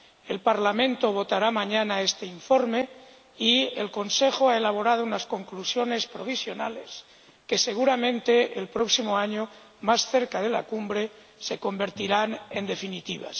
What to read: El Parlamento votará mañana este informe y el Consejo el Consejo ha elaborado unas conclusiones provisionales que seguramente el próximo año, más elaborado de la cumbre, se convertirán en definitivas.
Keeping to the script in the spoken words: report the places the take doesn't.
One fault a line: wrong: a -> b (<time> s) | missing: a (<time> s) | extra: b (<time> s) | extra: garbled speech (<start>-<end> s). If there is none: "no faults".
missing: el Consejo (4.5 s)
wrong: elaborado -> cerca (10.1 s)